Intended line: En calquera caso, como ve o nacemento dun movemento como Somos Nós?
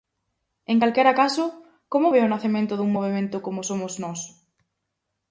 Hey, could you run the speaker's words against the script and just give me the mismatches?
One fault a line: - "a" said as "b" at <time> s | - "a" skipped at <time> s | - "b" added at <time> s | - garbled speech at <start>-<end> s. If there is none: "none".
none